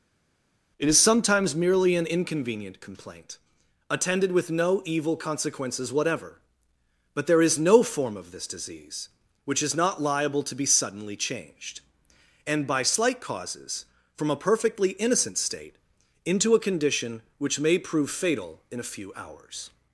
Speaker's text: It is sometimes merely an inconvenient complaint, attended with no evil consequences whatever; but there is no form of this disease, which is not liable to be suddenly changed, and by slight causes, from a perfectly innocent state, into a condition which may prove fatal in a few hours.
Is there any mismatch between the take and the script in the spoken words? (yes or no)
no